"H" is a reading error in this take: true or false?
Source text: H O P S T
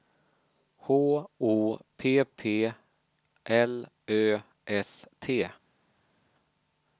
false